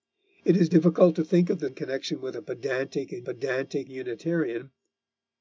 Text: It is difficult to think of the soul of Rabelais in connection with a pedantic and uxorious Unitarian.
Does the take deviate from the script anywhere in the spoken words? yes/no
yes